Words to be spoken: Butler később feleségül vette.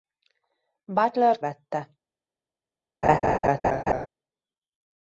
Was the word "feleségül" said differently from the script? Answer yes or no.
yes